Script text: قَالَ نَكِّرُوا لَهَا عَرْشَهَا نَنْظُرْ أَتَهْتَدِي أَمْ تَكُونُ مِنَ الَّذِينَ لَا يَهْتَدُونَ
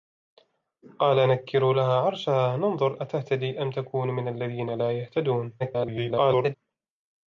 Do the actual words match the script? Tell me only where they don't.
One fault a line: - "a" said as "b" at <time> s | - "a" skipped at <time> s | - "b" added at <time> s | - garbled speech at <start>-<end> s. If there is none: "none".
- garbled speech at 5.6-6.5 s